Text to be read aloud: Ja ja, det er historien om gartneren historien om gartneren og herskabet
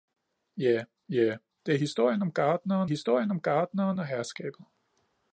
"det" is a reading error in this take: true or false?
false